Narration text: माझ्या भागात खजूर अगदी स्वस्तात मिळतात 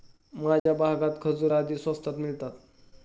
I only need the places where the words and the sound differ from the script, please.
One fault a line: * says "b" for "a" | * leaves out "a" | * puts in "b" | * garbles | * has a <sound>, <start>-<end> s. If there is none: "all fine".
* has a dropout, 0.6-0.7 s